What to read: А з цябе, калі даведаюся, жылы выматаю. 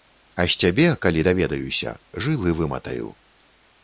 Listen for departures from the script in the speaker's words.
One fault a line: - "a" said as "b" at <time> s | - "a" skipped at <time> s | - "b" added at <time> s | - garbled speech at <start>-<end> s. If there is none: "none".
none